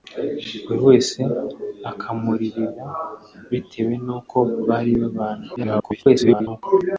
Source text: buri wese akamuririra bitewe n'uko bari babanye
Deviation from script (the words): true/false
true